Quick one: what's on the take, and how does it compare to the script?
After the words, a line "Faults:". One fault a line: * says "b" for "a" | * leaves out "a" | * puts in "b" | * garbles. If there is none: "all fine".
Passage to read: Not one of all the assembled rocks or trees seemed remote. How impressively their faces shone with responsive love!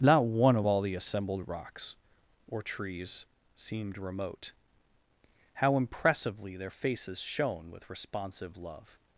Not one of all the assembled rocks or trees seemed remote. How impressively their faces shone with responsive love!
Faults:
all fine